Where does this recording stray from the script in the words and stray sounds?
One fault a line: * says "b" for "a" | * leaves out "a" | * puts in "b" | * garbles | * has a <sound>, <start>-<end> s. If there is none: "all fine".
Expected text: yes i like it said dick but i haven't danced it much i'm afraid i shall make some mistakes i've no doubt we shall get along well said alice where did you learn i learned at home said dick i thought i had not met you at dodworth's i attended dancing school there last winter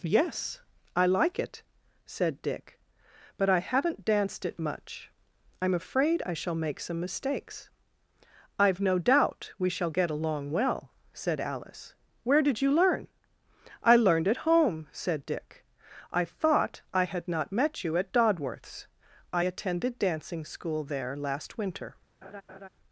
* has a laugh, 22.2-22.7 s